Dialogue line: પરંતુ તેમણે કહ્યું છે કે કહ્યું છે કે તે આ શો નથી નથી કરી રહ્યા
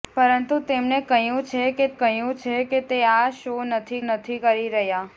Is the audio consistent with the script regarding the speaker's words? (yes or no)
yes